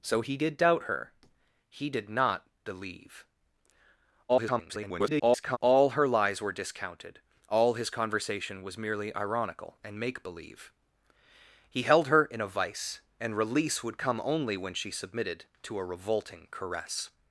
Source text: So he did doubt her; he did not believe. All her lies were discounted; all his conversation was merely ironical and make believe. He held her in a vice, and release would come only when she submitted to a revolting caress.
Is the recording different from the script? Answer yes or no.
yes